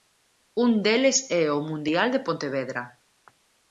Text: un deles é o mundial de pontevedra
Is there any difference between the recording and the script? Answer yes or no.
no